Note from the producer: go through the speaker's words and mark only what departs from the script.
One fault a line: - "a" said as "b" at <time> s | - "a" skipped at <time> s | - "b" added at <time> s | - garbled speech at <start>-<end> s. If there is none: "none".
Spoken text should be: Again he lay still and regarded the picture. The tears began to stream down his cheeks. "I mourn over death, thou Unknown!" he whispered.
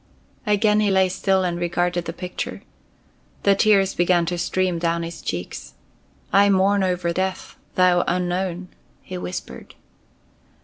none